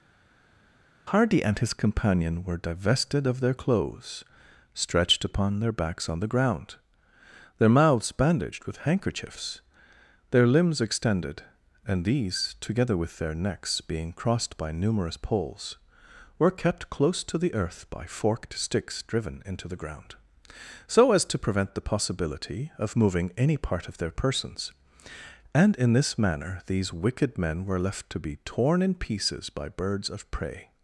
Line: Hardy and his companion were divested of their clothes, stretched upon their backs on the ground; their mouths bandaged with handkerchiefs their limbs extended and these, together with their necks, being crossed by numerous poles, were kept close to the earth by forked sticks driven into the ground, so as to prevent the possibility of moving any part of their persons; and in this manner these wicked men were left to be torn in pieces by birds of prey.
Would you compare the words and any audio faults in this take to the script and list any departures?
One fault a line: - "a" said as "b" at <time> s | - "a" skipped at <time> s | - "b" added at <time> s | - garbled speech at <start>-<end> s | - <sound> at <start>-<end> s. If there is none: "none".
none